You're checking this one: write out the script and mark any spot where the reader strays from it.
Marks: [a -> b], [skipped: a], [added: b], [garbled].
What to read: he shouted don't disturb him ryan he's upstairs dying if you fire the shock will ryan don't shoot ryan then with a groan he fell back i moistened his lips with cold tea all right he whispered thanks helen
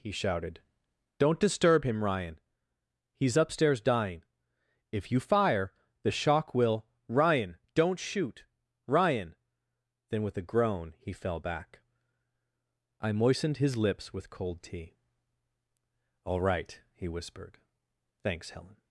he shouted don't disturb him ryan he's upstairs dying if you fire the shock will ryan don't shoot ryan then with a groan he fell back i moistened his lips with cold tea all right he whispered thanks helen